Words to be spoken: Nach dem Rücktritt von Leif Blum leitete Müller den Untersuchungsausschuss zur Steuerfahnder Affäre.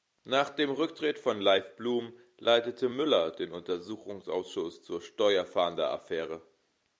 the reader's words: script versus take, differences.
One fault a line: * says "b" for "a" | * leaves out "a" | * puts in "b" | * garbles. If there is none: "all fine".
all fine